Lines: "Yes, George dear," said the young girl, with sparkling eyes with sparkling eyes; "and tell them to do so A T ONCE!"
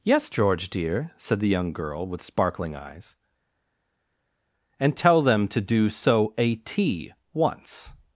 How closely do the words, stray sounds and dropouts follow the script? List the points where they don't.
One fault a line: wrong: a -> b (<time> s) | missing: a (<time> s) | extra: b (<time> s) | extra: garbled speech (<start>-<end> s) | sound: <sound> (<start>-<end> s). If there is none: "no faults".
missing: with sparkling eyes (3.2 s)